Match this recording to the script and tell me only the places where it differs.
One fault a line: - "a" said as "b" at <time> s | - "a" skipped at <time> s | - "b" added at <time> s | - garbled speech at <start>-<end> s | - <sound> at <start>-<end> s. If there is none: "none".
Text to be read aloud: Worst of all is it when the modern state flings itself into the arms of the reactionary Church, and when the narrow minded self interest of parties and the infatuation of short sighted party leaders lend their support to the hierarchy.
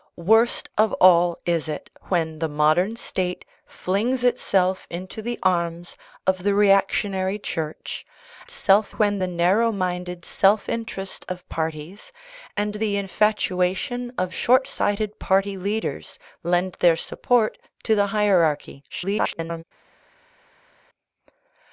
- "and" said as "self" at 8.5 s
- garbled speech at 18.9-19.6 s